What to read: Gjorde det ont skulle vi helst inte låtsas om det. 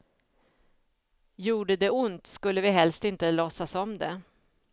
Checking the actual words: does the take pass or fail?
pass